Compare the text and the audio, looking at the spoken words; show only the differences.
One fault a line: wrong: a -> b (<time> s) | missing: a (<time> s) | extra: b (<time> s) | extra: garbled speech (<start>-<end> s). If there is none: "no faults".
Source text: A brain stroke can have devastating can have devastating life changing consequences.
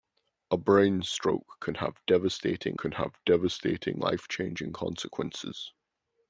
no faults